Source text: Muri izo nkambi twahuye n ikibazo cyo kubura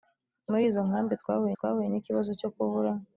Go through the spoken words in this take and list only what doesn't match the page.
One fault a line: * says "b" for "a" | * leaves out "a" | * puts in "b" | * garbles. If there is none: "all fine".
* puts in "twahuye"